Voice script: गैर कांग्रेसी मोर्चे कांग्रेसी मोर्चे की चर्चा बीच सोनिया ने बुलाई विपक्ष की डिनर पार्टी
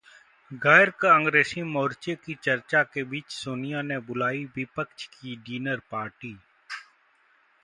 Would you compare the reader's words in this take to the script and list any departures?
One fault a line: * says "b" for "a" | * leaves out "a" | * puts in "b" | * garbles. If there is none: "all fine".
* leaves out "कांग्रेसी मोर्चे"
* puts in "के"